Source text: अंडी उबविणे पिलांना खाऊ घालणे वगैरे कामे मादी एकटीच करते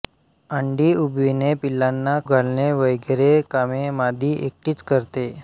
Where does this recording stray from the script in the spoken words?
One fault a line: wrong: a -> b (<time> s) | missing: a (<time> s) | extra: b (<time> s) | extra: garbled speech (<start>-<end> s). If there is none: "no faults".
missing: खाऊ (2.2 s)